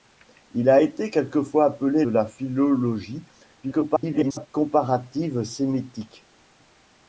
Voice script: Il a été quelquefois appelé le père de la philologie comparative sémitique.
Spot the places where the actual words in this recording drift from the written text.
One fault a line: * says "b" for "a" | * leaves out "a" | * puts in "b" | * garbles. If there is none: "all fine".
* leaves out "le père de"
* garbles